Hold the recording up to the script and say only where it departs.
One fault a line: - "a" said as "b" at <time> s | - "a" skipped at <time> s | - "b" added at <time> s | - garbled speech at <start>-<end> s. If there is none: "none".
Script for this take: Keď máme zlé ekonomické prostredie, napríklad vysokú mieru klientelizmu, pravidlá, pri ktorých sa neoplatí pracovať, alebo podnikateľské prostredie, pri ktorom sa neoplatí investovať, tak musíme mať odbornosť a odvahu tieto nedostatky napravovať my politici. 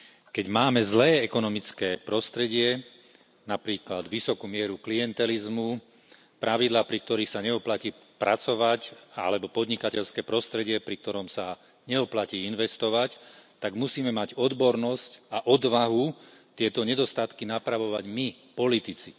none